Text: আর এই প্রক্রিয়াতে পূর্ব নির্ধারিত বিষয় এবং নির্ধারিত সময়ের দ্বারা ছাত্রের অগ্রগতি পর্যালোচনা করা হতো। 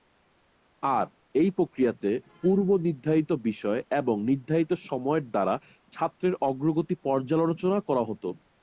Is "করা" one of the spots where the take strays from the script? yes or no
no